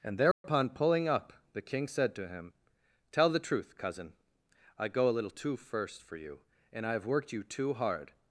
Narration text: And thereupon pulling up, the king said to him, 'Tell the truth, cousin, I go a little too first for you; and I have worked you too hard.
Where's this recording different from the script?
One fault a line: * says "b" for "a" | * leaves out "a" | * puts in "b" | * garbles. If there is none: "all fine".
all fine